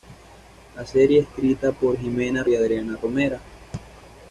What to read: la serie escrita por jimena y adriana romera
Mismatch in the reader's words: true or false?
false